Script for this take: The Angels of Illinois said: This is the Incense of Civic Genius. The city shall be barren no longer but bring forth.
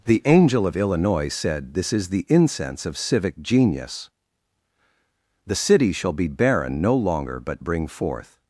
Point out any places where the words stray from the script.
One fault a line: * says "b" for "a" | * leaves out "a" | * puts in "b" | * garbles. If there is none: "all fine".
* says "Angel" for "Angels"